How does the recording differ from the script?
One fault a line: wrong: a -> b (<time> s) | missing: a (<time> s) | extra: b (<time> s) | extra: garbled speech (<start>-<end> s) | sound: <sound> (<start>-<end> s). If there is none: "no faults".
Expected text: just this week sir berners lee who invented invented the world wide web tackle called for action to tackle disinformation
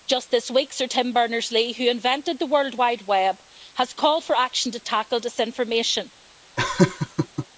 extra: tim (0.9 s)
missing: invented (2.4 s)
wrong: tackle -> has (3.7 s)
sound: laugh (6.6-7.5 s)